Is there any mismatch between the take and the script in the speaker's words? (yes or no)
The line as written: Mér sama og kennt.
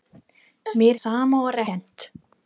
no